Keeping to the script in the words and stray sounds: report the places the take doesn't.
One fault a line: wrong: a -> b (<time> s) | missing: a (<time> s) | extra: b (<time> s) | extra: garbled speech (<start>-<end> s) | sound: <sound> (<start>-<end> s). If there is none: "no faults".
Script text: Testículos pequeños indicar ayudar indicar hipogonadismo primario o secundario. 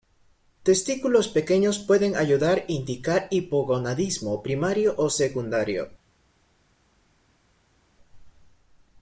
wrong: indicar -> pueden (1.8 s)